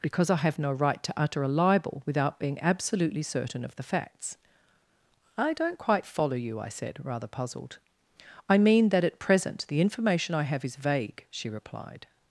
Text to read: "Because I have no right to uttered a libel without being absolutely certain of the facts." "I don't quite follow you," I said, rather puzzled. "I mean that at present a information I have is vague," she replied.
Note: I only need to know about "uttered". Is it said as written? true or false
false